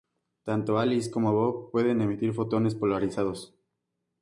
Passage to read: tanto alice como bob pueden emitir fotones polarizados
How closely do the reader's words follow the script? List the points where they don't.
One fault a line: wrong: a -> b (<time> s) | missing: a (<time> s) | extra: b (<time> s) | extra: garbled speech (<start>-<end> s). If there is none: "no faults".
no faults